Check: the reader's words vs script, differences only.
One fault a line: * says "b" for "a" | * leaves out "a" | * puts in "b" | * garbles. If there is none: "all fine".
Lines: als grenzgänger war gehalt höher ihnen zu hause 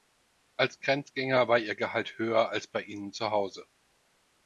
* puts in "ihr"
* puts in "als bei"